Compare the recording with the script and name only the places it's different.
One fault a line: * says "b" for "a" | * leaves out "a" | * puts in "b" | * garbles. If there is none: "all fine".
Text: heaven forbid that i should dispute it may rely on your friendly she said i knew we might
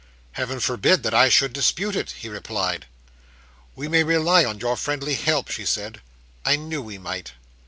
* puts in "he replied we"
* puts in "help"